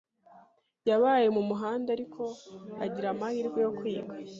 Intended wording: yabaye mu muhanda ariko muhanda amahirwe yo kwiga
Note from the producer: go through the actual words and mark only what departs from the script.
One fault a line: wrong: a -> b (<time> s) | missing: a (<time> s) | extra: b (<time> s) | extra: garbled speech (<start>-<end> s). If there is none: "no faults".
wrong: muhanda -> agira (2.9 s)